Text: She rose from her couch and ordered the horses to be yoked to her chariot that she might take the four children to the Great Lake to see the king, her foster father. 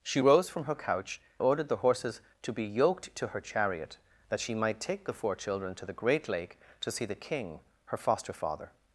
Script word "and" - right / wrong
wrong